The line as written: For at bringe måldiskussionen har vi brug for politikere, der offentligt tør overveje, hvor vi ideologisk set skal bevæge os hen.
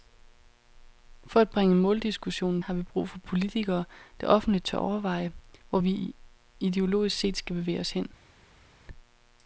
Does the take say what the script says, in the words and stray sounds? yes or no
yes